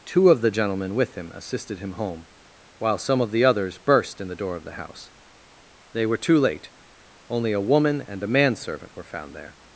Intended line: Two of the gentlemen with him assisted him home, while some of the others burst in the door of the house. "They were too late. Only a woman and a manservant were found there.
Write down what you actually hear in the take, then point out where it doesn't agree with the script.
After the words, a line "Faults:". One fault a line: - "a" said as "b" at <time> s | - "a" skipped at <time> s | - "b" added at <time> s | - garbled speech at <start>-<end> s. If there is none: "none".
Two of the gentlemen with him assisted him home, while some of the others burst in the door of the house. "They were too late. Only a woman and a manservant were found there.
Faults:
none